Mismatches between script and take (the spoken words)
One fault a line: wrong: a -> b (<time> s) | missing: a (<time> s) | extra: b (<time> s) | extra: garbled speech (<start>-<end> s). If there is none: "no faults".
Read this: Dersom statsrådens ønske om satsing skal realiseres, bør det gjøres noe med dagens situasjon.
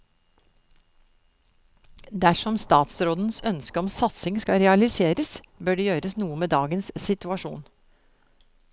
no faults